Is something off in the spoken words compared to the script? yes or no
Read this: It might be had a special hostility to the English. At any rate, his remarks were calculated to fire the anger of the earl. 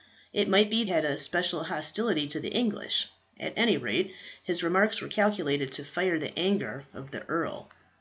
no